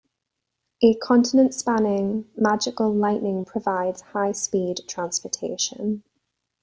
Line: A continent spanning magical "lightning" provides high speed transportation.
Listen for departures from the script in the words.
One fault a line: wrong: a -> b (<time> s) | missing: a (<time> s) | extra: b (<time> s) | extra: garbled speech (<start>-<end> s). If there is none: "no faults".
no faults